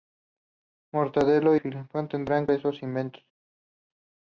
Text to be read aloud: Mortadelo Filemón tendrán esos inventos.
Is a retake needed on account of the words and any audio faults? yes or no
no